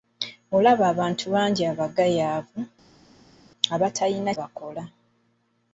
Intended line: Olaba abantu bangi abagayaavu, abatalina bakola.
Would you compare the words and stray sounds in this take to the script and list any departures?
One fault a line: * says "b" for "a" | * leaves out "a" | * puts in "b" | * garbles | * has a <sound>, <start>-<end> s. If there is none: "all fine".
all fine